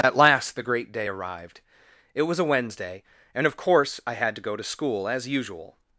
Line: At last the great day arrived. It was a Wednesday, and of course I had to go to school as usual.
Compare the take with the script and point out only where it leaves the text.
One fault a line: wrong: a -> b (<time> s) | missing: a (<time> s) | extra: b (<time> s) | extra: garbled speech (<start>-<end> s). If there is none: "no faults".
no faults